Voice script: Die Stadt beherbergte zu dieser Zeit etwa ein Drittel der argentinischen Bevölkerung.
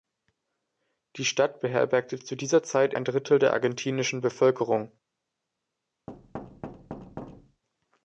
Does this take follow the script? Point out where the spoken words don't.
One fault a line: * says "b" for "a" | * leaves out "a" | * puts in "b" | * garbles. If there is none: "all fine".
* leaves out "etwa"